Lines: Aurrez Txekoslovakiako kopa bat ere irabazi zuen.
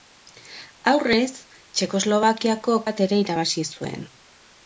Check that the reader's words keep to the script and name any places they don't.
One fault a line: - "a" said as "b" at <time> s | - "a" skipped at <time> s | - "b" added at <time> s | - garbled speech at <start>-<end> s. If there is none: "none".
- "kopa" skipped at 2.8 s